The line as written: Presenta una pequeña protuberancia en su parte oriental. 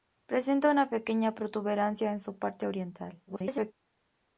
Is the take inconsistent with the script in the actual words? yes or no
yes